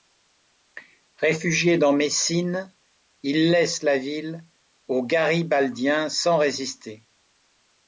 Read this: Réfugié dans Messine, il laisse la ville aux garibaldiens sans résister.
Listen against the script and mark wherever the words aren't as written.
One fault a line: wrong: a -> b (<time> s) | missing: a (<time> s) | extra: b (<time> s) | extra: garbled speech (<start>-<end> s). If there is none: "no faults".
no faults